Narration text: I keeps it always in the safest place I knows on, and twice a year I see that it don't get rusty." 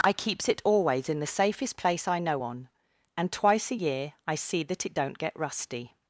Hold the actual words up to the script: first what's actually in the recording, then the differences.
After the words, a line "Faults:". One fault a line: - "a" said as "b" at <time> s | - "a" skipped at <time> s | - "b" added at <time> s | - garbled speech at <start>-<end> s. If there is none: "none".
I keeps it always in the safest place I know on, and twice a year I see that it don't get rusty."
Faults:
- "knows" said as "know" at 2.2 s